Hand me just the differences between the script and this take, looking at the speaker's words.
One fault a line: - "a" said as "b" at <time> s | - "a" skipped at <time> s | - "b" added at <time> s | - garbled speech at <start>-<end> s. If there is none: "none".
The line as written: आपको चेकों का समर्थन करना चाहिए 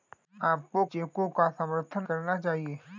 none